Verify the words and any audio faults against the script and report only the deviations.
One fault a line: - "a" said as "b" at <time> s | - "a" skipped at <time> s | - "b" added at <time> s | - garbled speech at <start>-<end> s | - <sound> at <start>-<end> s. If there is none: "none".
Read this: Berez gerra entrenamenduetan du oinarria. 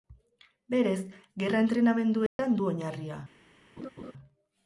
- dropout at 2.3-2.4 s
- laugh at 3.8-4.1 s